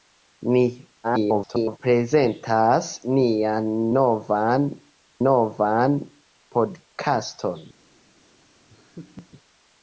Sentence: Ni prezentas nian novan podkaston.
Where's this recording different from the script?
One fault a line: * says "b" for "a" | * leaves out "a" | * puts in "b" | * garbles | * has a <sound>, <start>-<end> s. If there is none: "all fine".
* garbles
* puts in "novan"
* has a laugh, 8.7-9.3 s